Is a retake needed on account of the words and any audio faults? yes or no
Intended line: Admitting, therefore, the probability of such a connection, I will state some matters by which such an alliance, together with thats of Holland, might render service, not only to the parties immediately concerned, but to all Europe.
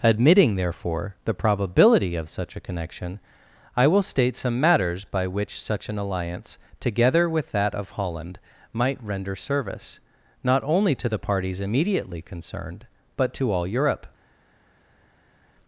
yes